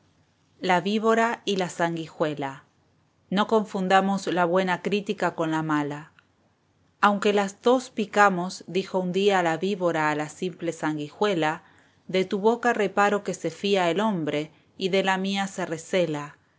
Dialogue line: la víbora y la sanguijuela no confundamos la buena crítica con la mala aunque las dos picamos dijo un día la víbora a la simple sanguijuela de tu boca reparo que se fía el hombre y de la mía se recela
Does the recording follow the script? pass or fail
pass